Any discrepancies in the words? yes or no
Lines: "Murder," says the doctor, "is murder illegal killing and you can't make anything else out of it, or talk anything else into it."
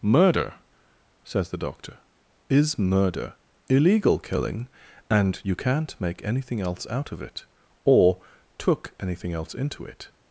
yes